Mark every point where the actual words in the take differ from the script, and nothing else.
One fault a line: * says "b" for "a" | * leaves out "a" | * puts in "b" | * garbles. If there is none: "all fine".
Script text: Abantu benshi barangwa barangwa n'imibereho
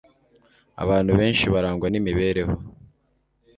* leaves out "barangwa"